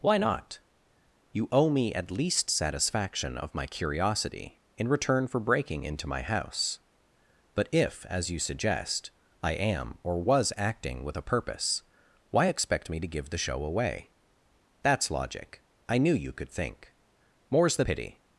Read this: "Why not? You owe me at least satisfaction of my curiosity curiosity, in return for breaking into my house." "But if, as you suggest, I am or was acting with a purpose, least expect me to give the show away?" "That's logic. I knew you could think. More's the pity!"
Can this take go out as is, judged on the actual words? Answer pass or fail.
fail